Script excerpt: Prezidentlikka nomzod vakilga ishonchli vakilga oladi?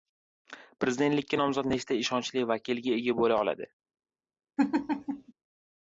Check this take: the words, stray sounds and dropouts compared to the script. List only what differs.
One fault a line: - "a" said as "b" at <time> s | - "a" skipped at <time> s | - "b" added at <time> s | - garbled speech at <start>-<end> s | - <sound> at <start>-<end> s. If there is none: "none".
- "vakilga" said as "nechta" at 1.7 s
- "ega bo‘la" added at 3.0 s
- laugh at 4.6-5.3 s